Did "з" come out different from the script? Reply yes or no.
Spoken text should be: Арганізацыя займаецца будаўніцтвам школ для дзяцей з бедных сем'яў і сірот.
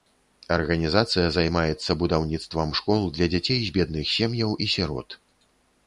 no